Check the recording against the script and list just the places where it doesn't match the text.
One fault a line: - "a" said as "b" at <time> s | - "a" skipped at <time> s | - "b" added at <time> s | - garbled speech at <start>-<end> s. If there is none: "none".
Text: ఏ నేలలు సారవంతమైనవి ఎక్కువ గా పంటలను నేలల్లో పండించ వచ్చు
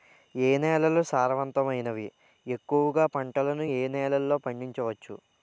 - "ఏ" added at 3.7 s